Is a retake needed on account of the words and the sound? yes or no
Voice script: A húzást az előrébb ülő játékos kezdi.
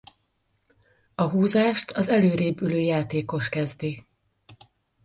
no